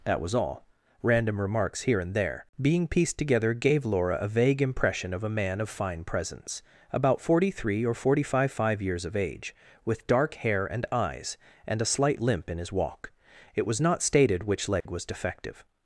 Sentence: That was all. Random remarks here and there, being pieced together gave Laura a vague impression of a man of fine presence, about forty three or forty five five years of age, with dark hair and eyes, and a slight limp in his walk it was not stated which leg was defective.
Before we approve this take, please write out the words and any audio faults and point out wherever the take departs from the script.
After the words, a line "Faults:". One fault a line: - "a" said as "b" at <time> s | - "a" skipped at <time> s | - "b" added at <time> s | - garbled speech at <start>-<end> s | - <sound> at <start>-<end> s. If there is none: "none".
That was all. Random remarks here and there, being pieced together gave Laura a vague impression of a man of fine presence, about forty three or forty five five years of age, with dark hair and eyes, and a slight limp in his walk it was not stated which leg was defective.
Faults:
- dropout at 14.8-14.9 s